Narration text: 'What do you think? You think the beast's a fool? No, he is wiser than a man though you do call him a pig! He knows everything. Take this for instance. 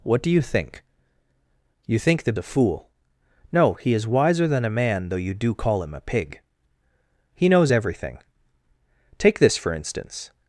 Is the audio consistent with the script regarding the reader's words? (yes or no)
no